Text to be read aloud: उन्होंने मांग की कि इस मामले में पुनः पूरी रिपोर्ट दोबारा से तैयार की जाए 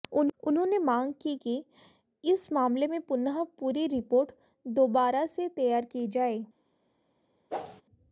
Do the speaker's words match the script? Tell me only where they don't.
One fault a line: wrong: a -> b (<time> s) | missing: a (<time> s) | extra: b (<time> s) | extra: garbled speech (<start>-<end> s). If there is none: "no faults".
no faults